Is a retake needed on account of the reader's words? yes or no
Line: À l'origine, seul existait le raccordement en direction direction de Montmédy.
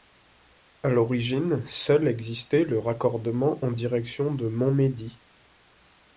yes